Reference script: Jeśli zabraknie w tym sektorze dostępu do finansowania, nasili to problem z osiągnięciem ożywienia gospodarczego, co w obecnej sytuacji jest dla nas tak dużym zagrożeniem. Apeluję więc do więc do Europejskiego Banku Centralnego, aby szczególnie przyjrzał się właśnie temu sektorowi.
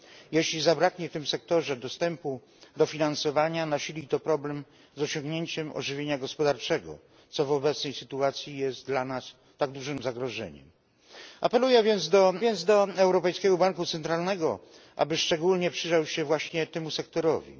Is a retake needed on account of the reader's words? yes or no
no